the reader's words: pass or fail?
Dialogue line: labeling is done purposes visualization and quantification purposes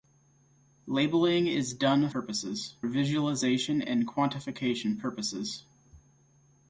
pass